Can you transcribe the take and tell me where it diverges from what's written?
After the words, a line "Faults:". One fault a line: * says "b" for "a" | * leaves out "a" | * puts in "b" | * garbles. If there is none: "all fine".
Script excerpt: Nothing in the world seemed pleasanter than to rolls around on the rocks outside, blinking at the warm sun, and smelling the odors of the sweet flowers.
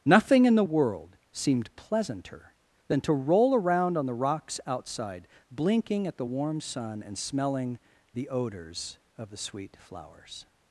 Nothing in the world seemed pleasanter than to roll around on the rocks outside, blinking at the warm sun, and smelling the odors of the sweet flowers.
Faults:
* says "roll" for "rolls"